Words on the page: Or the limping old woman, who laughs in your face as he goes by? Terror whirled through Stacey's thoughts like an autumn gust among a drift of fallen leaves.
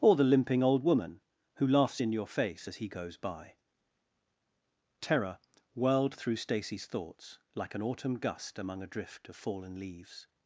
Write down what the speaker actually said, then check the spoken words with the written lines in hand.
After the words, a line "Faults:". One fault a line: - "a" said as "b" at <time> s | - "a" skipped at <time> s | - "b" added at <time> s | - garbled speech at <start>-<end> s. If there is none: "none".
Or the limping old woman, who laughs in your face as he goes by? Terror whirled through Stacey's thoughts like an autumn gust among a drift of fallen leaves.
Faults:
none